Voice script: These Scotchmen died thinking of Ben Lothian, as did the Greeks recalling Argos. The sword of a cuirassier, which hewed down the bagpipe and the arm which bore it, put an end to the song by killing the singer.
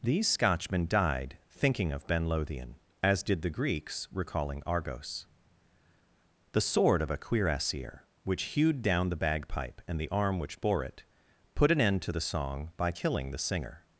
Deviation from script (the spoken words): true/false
false